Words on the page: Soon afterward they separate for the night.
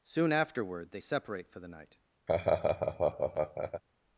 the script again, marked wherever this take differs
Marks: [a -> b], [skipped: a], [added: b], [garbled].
Soon afterward they separate for the night.